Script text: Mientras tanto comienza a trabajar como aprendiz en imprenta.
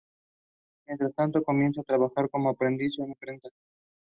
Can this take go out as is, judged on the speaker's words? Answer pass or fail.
pass